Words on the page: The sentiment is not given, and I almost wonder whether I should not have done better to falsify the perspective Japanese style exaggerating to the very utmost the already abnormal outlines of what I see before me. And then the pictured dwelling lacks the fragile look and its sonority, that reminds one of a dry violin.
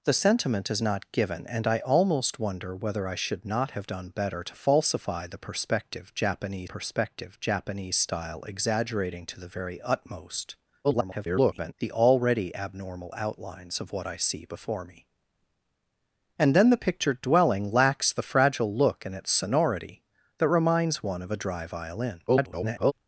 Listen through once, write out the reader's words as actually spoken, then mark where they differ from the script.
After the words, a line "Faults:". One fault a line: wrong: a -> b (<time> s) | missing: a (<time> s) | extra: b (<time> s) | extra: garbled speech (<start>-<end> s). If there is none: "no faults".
The sentiment is not given, and I almost wonder whether I should not have done better to falsify the perspective Japanese perspective Japanese style exaggerating to the very utmost [garbled] the already abnormal outlines of what I see before me. And then the pictured dwelling lacks the fragile look and its sonority, that reminds one of a dry violin. [garbled]
Faults:
extra: perspective Japanese (6.7 s)
extra: garbled speech (10.8-11.7 s)
extra: garbled speech (22.3-22.9 s)